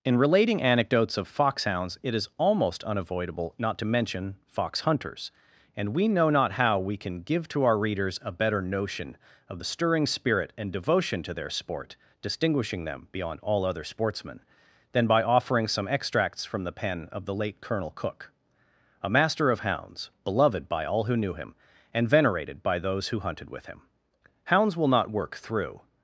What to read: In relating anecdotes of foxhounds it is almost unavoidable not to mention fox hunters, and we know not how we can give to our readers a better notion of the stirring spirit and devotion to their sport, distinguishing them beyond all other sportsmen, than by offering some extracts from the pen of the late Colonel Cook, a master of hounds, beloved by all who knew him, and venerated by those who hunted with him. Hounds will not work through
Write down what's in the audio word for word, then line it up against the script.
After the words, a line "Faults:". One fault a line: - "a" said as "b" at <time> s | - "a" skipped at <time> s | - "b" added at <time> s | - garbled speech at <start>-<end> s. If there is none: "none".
In relating anecdotes of foxhounds it is almost unavoidable not to mention fox hunters, and we know not how we can give to our readers a better notion of the stirring spirit and devotion to their sport, distinguishing them beyond all other sportsmen, than by offering some extracts from the pen of the late Colonel Cook, a master of hounds, beloved by all who knew him, and venerated by those who hunted with him. Hounds will not work through
Faults:
none